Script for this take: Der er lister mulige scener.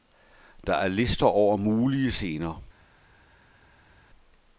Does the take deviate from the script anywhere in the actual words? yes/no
yes